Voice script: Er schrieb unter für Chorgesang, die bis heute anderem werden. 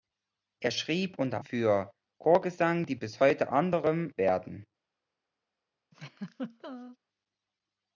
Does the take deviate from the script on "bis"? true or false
false